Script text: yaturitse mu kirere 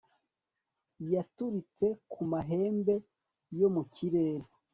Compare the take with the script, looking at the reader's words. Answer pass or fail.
fail